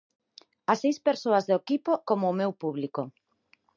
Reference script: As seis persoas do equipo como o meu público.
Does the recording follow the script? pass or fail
pass